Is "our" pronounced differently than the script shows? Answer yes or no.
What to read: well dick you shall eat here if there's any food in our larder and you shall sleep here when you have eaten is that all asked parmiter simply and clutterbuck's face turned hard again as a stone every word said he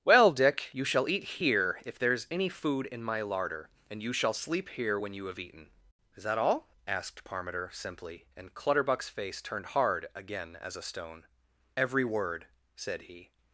yes